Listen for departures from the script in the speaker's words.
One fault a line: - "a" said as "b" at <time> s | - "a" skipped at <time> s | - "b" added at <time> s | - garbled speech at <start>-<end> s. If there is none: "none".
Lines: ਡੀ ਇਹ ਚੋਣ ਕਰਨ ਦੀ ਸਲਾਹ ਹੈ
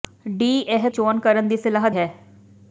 none